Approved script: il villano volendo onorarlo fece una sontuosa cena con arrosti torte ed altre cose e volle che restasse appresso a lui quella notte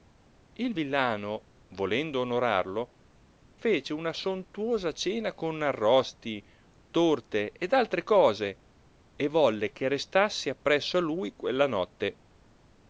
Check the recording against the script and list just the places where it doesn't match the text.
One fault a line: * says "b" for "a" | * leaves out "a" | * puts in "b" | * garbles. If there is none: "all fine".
all fine